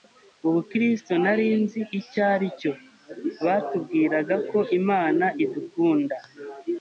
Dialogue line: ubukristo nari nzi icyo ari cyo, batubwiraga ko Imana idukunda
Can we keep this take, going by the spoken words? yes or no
yes